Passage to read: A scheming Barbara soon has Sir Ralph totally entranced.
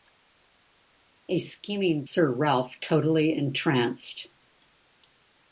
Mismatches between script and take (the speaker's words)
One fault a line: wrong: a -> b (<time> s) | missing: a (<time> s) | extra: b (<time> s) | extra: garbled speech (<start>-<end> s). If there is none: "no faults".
missing: Barbara soon has (2.0 s)